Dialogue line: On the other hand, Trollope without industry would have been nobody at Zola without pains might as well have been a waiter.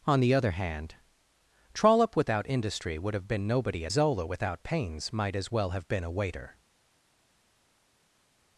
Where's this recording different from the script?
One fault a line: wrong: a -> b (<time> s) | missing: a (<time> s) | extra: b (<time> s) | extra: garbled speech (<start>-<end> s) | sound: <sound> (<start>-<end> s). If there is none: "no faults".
no faults